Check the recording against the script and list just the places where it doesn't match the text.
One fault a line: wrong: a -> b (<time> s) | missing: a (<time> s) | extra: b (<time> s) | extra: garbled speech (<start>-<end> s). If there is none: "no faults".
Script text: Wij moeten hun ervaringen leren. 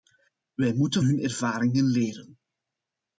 no faults